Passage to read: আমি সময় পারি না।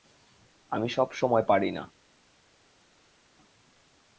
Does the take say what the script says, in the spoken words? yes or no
no